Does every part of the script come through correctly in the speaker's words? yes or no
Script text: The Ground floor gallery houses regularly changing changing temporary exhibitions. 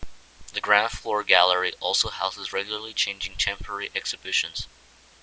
no